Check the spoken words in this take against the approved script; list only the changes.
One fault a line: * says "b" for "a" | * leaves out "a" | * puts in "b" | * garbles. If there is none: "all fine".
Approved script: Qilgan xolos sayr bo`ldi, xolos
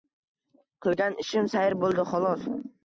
* says "ishim" for "xolos"